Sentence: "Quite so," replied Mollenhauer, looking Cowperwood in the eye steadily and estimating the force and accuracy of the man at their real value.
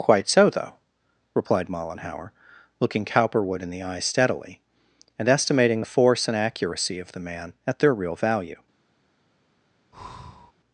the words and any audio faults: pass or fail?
fail